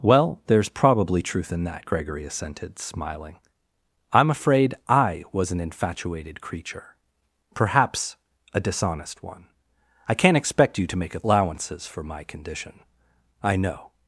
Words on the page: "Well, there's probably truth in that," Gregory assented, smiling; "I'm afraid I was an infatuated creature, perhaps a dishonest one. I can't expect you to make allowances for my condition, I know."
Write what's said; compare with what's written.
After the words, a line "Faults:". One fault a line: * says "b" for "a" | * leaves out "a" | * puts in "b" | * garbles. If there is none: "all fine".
"Well, there's probably truth in that," Gregory assented, smiling; "I'm afraid I was an infatuated creature, perhaps a dishonest one. I can't expect you to make allowances for my condition, I know."
Faults:
all fine